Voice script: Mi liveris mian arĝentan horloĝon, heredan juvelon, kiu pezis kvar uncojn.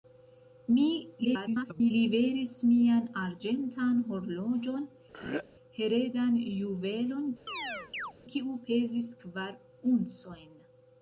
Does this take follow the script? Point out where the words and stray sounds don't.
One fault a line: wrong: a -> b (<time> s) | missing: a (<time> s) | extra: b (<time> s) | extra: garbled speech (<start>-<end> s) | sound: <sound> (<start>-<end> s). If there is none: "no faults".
extra: garbled speech (1.2-1.9 s)
sound: throat clearing (5.1-5.4 s)
sound: chirp (7.5-8.1 s)